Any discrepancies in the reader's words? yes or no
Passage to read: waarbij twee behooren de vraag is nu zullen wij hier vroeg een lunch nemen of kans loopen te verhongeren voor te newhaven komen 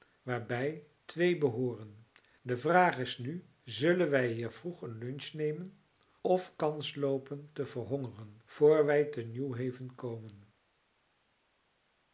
yes